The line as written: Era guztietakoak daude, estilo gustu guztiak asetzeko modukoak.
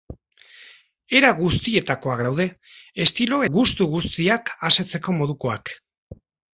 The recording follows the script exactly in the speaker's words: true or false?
true